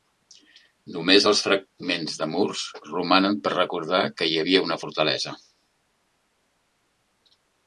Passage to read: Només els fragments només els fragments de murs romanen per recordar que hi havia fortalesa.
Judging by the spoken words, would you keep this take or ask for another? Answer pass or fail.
fail